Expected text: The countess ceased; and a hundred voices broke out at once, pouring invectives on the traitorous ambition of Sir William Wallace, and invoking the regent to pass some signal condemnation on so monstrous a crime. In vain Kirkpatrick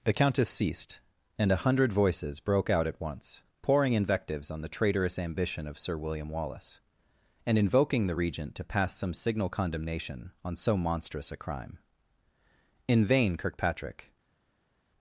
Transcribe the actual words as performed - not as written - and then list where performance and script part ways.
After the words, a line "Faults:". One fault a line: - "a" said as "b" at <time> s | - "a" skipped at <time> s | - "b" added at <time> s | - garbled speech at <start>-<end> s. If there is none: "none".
The countess ceased; and a hundred voices broke out at once, pouring invectives on the traitorous ambition of Sir William Wallace, and invoking the regent to pass some signal condemnation on so monstrous a crime. In vain Kirkpatrick
Faults:
none